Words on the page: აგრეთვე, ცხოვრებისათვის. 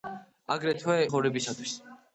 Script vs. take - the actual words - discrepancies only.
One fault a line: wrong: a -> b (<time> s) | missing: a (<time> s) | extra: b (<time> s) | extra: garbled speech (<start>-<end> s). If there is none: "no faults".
no faults